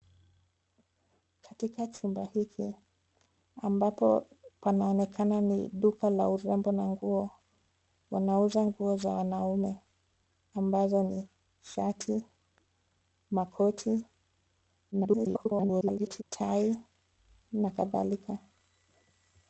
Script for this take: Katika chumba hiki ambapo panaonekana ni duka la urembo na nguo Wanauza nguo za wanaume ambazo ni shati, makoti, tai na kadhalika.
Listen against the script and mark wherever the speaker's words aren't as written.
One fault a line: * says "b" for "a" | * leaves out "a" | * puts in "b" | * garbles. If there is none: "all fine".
* garbles